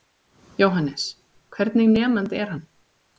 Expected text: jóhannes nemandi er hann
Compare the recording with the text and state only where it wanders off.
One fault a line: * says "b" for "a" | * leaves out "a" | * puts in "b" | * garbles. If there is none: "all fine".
* puts in "hvernig"